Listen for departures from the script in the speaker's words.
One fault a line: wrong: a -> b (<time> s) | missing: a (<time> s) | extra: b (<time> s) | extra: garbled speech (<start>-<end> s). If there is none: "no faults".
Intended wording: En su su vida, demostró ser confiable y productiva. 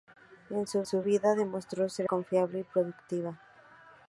no faults